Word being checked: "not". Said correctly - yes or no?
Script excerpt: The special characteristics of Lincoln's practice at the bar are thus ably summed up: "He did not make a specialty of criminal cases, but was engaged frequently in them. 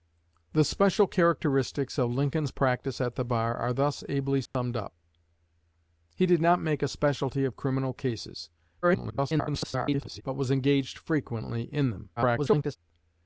yes